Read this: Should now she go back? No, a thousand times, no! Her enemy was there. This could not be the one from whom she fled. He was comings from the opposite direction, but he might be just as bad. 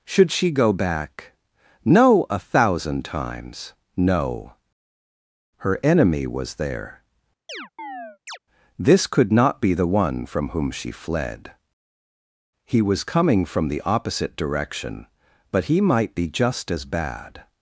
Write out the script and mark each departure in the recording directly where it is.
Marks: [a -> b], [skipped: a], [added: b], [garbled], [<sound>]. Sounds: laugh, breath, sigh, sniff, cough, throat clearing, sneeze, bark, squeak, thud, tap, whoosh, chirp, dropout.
Should [skipped: now] she go back? No, a thousand times, no! Her enemy was there. [chirp] This could not be the one from whom she fled. He was [comings -> coming] from the opposite direction, but he might be just as bad.